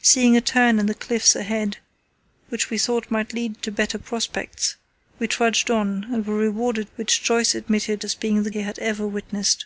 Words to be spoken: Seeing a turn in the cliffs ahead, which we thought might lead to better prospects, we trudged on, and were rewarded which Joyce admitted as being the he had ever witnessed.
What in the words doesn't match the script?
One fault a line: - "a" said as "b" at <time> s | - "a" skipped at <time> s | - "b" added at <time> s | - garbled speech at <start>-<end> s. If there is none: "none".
none